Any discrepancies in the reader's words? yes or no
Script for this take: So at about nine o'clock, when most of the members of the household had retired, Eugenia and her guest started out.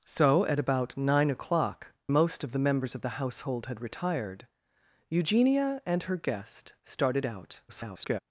yes